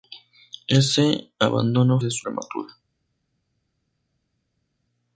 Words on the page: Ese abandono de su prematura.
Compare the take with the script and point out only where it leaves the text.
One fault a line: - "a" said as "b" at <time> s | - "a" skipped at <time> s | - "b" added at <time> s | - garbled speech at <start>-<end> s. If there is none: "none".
none